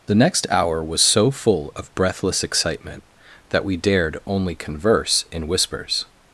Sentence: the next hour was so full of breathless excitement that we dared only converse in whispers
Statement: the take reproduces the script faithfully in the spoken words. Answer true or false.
true